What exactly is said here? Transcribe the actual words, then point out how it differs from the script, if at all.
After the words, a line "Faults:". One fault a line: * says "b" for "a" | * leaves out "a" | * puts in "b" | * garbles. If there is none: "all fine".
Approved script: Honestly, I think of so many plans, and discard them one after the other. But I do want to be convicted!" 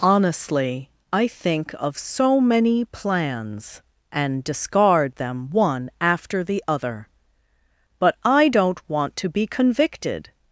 Honestly, I think of so many plans, and discard them one after the other. But I don't want to be convicted!"
Faults:
* says "don't" for "do"